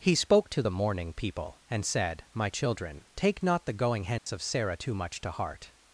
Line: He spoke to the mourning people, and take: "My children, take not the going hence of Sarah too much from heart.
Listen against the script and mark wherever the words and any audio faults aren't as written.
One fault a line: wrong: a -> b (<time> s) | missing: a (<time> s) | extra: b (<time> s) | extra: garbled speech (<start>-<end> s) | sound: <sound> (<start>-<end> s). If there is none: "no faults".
wrong: take -> said (1.8 s)
sound: dropout (4.2-4.3 s)
wrong: from -> to (5.2 s)